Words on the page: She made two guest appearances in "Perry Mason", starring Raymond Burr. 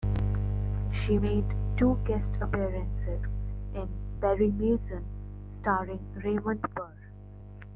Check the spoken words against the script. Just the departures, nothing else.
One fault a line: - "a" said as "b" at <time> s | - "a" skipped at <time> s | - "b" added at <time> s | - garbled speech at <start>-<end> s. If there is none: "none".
none